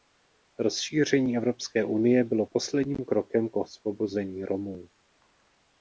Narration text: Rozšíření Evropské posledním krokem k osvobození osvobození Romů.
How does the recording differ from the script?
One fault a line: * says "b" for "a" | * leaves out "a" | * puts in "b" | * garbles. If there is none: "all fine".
* puts in "unie bylo"
* leaves out "osvobození"